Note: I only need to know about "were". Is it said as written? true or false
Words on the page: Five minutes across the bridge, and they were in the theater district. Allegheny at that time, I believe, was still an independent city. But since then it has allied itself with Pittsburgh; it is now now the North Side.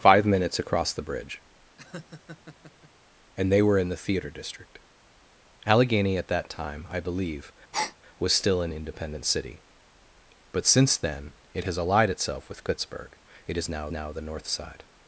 true